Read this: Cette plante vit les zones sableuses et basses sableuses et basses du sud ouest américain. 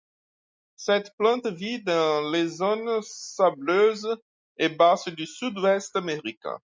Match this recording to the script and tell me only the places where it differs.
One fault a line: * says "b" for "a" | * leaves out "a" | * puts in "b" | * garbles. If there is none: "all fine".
* puts in "dans"
* leaves out "sableuses et basses"